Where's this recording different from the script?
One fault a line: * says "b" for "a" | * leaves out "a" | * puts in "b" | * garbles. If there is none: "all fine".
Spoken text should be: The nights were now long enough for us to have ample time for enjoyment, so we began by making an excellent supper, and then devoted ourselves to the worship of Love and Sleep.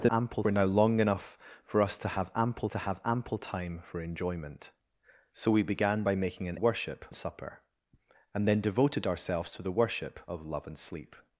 * says "ample" for "nights"
* puts in "to have ample"
* says "worship" for "excellent"